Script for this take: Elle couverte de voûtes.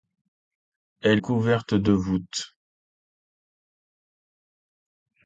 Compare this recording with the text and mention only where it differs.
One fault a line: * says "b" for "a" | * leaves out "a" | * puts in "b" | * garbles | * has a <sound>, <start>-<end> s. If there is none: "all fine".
all fine